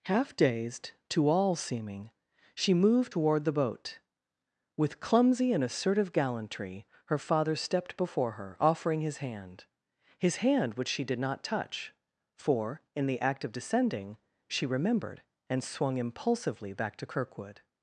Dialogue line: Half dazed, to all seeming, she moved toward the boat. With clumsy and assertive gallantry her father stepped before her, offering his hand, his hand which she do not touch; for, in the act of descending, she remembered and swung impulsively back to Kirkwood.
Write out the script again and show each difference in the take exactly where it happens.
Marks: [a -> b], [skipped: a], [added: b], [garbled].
Half dazed, to all seeming, she moved toward the boat. With clumsy and assertive gallantry her father stepped before her, offering his hand, his hand which she [do -> did] not touch; for, in the act of descending, she remembered and swung impulsively back to Kirkwood.